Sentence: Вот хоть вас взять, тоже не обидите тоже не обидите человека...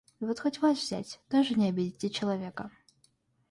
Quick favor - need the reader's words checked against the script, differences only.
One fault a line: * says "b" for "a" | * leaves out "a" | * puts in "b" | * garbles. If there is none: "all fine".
* leaves out "тоже не обидите"